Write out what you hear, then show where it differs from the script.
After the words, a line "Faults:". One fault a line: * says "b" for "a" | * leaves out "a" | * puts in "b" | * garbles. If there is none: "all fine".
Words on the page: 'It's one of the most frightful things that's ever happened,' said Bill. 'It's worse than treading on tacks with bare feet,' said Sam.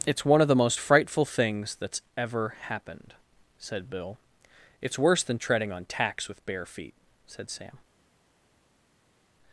'It's one of the most frightful things that's ever happened,' said Bill. 'It's worse than treading on tacks with bare feet,' said Sam.
Faults:
all fine